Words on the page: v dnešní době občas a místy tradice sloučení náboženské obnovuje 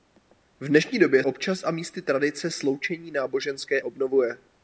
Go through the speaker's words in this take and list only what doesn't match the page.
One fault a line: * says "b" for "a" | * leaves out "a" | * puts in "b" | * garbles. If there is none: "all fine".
all fine